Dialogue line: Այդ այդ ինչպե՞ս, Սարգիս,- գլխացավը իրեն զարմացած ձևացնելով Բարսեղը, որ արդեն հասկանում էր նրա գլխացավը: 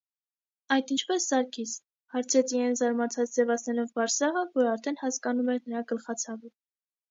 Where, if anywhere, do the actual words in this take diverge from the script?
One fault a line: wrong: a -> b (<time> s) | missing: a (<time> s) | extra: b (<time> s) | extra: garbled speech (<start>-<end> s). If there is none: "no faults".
missing: այդ (0.9 s)
wrong: գլխացավը -> հարցրեց (2.2 s)